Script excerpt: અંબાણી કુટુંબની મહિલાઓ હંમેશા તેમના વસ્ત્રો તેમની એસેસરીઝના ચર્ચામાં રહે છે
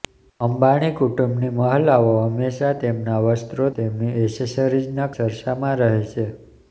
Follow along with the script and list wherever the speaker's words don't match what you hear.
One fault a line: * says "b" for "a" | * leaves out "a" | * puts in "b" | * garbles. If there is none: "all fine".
all fine